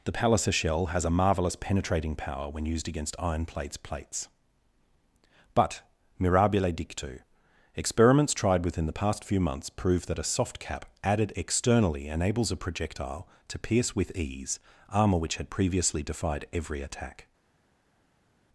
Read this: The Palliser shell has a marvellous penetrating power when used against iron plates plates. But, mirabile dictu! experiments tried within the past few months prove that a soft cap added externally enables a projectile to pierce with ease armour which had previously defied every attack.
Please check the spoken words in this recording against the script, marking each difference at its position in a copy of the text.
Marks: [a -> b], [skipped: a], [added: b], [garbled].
The Palliser shell has a marvellous penetrating power when used against iron plates plates. But, mirabile dictu! experiments tried within the past few months prove that a soft cap added externally enables a projectile to pierce with ease armour which had previously defied every attack.